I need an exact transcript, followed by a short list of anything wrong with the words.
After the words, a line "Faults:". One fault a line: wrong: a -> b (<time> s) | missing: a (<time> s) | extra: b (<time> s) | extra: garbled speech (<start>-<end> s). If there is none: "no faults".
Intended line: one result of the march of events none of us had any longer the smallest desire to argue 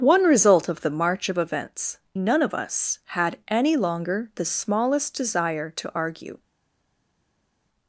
one result of the march of events none of us had any longer the smallest desire to argue
Faults:
no faults